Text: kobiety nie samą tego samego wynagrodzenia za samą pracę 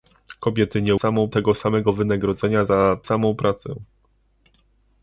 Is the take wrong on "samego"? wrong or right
right